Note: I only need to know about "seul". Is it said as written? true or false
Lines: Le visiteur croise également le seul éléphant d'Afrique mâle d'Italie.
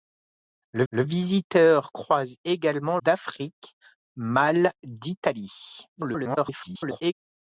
false